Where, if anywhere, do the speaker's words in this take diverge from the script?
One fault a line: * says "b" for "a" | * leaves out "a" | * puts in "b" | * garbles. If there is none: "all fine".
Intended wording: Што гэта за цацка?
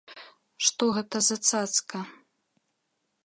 all fine